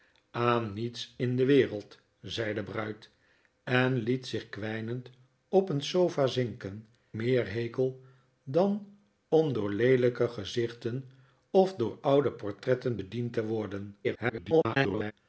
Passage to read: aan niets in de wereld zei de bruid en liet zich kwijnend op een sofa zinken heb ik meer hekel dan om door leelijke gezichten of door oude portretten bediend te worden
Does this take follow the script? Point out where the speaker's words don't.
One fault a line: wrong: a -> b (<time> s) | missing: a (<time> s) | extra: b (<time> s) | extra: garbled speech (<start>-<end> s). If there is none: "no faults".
missing: heb ik (6.9 s)
extra: garbled speech (14.0-15.1 s)